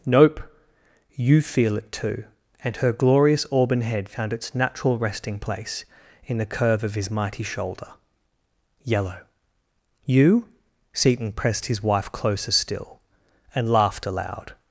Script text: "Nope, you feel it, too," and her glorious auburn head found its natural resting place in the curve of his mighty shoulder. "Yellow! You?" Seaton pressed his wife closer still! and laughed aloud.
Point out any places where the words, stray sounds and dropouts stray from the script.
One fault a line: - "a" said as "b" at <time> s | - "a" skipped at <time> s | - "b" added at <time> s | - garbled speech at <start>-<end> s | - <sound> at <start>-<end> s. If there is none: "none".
none